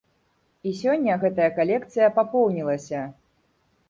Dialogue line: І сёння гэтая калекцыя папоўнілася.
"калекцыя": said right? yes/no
yes